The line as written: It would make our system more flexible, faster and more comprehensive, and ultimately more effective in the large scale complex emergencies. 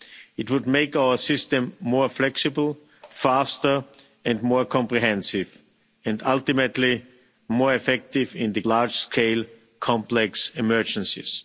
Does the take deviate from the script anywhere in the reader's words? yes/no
no